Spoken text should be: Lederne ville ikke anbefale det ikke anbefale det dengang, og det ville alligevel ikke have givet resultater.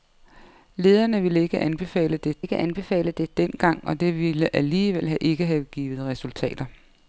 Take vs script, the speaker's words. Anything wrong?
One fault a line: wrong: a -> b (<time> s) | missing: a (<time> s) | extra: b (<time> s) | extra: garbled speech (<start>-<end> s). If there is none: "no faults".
no faults